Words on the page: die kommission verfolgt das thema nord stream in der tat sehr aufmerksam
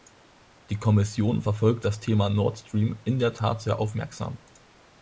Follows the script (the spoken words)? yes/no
yes